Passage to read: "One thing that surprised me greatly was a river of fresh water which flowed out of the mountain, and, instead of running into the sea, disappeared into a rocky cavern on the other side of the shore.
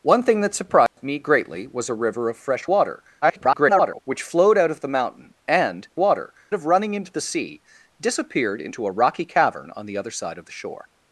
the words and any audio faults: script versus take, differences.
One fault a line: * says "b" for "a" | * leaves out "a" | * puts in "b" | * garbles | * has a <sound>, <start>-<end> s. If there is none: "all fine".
* has a dropout, 0.9-1.0 s
* garbles
* says "water" for "instead"